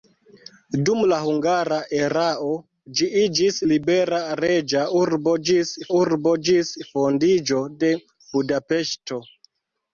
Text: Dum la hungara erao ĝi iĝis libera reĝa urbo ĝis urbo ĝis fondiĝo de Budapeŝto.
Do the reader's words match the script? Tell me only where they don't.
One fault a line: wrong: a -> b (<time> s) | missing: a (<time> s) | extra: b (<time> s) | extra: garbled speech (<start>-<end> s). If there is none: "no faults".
no faults